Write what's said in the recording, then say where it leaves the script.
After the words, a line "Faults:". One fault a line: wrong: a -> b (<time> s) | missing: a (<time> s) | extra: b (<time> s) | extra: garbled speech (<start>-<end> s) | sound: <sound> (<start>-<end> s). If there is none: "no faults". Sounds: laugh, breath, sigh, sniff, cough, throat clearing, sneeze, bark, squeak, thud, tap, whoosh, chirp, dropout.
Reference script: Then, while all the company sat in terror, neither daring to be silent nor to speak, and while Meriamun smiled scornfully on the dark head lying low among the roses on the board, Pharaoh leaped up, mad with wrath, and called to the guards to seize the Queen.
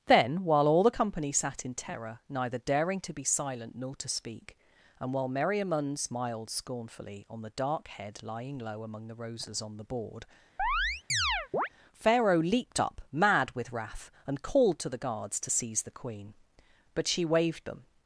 Then, while all the company sat in terror, neither daring to be silent nor to speak, and while Meriamun smiled scornfully on the dark head lying low among the roses on the board, Pharaoh leaped up, mad with wrath, and called to the guards to seize the Queen. But she waved them
Faults:
sound: chirp (10.6-11.7 s)
extra: But she waved them (16.9 s)